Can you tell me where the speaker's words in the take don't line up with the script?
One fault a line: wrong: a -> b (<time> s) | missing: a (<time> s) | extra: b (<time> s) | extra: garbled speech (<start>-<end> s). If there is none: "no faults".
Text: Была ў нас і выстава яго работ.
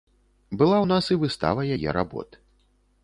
wrong: яго -> яе (1.8 s)